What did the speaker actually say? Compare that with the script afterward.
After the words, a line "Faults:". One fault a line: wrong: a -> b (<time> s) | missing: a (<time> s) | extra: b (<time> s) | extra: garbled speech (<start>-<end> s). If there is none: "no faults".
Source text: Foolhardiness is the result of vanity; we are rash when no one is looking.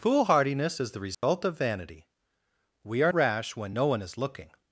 Foolhardiness is the result of vanity; we are rash when no one is looking.
Faults:
no faults